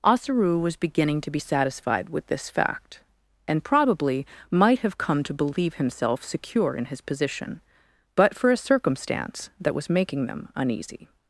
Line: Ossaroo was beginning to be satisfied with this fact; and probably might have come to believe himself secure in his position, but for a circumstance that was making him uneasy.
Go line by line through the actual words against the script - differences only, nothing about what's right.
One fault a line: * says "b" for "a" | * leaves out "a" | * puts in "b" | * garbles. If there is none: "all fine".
* says "them" for "him"